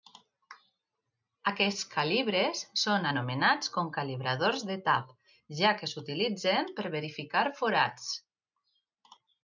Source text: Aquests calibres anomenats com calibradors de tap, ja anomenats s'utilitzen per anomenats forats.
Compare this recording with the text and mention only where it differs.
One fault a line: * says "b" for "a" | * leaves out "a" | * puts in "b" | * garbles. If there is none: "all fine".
* puts in "són"
* says "que" for "anomenats"
* says "verificar" for "anomenats"